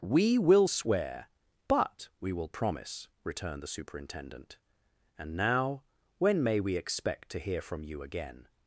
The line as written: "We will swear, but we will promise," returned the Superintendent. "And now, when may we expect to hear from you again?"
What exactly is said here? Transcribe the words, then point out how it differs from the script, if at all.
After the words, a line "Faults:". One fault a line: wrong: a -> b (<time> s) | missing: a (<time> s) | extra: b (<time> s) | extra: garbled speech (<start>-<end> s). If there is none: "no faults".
"We will swear, but we will promise," returned the Superintendent. "And now, when may we expect to hear from you again?"
Faults:
no faults